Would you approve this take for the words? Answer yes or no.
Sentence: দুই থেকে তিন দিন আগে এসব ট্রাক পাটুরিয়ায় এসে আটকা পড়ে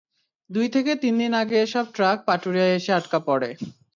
yes